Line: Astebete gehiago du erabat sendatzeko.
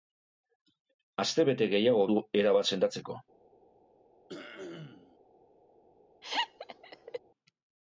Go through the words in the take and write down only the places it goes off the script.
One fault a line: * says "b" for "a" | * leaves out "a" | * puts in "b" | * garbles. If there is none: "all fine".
all fine